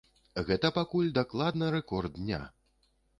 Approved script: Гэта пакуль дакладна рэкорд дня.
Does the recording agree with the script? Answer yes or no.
yes